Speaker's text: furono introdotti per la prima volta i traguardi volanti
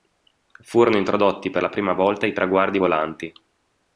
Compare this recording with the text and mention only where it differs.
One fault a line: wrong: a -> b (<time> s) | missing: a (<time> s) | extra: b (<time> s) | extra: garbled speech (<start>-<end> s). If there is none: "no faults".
no faults